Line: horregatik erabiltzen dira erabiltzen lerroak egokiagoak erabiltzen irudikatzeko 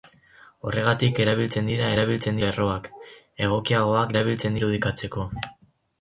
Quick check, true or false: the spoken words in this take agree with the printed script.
true